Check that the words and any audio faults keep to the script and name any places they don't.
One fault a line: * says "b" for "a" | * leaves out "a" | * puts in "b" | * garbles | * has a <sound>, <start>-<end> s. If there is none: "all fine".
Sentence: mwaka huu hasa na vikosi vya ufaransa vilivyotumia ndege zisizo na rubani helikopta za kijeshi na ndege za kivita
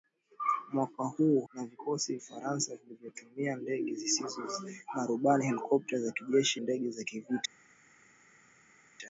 * leaves out "hasa"
* leaves out "vya"
* leaves out "na"